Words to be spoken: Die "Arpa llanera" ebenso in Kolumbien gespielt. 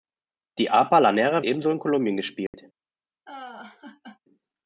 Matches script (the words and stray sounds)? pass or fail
fail